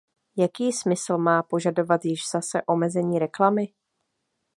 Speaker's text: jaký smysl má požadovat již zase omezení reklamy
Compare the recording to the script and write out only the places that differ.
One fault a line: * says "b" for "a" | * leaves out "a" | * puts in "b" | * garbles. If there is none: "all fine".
all fine